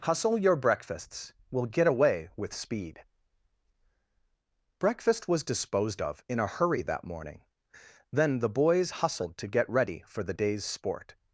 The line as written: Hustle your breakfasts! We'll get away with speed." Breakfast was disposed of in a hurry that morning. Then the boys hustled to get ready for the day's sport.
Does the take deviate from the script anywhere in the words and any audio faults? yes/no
no